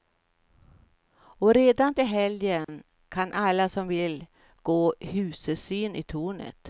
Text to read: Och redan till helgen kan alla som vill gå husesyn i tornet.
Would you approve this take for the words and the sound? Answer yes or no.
no